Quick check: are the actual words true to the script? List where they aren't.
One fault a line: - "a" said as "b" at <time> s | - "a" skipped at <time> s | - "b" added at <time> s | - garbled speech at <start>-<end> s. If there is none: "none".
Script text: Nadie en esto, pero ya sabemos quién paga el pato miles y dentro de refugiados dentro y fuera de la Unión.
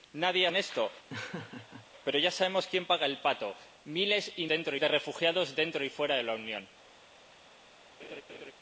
none